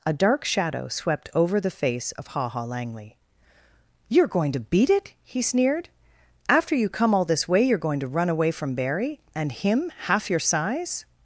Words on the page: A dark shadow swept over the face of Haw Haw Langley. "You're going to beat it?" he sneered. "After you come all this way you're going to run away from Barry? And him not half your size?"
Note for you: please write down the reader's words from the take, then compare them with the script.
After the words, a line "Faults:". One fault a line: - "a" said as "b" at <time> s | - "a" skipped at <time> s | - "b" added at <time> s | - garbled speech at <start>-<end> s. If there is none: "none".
A dark shadow swept over the face of Haw Haw Langley. "You're going to beat it?" he sneered. "After you come all this way you're going to run away from Barry? And him half your size?"
Faults:
- "not" skipped at 9.9 s